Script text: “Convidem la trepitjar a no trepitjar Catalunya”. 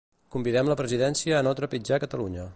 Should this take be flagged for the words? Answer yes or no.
yes